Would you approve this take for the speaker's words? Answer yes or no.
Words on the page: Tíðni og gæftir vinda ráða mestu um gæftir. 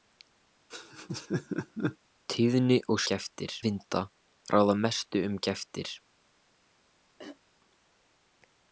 yes